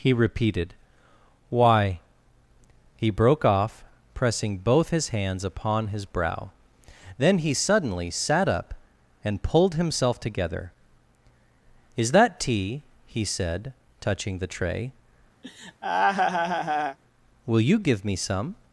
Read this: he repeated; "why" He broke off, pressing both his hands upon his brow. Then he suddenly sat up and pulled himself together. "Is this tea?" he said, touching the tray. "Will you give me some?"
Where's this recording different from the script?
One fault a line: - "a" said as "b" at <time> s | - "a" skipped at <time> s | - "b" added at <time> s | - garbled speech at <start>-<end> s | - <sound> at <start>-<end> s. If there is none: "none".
- "this" said as "that" at 12.1 s
- laugh at 15.4-17.0 s